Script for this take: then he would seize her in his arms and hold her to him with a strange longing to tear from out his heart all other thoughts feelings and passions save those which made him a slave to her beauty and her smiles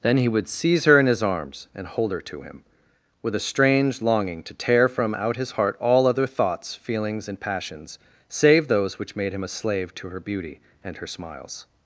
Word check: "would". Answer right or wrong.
right